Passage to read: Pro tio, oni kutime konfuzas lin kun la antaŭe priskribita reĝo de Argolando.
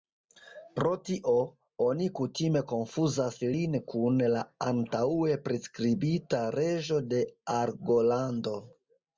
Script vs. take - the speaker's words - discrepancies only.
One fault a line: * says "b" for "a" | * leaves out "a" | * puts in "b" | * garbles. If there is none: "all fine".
all fine